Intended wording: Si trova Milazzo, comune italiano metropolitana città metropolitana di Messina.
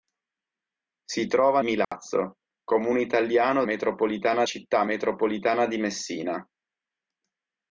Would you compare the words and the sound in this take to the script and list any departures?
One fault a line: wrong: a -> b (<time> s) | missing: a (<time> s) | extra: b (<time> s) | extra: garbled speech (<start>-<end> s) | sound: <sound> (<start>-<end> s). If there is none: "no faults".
sound: dropout (1.8-1.9 s)